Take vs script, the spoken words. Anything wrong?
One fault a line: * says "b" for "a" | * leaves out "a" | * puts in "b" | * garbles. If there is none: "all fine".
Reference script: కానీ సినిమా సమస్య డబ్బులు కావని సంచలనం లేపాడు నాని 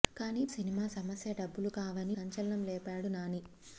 all fine